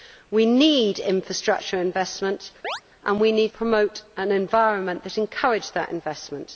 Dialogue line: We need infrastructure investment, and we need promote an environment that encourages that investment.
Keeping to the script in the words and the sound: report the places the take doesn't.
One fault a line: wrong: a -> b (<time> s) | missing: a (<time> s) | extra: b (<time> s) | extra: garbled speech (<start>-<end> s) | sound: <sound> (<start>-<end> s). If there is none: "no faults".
sound: chirp (2.6-2.8 s)